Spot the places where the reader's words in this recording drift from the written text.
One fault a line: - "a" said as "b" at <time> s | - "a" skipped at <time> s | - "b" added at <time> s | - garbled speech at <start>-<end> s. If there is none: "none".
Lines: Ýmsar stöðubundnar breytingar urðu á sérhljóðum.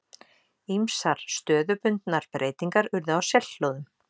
none